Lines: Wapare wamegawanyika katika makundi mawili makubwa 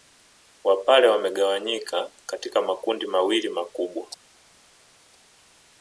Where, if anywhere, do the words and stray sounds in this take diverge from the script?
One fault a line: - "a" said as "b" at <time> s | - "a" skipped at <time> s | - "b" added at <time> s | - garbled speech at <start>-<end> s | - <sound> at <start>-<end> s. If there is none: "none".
none